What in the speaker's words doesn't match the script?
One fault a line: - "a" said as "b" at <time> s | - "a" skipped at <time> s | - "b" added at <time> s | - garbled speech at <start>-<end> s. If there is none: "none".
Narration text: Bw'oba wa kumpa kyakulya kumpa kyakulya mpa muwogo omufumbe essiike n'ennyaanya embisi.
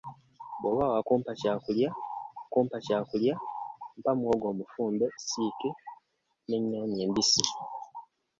none